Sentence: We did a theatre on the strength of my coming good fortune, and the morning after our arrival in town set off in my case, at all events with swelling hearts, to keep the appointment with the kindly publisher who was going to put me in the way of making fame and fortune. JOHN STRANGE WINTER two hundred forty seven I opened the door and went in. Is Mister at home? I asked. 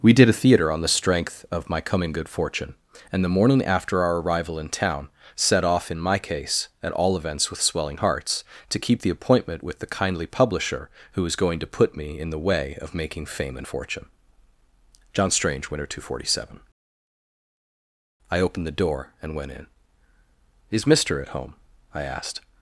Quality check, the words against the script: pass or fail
pass